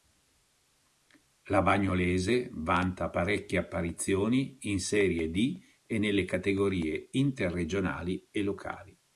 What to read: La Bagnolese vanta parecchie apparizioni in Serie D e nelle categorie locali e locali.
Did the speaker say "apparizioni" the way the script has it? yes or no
yes